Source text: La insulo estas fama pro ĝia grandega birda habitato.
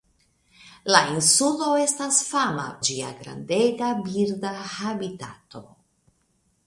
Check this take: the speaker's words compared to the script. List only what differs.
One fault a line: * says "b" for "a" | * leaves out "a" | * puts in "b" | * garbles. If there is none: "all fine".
* leaves out "pro"